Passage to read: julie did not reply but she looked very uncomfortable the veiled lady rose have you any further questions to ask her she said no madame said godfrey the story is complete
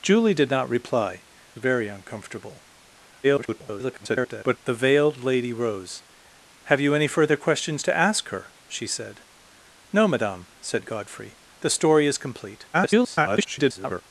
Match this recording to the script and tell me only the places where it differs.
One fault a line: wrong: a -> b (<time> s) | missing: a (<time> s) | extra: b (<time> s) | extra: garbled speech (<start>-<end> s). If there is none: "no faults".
missing: but she looked (1.2 s)
extra: garbled speech (3.2-4.6 s)
extra: garbled speech (12.7-14.0 s)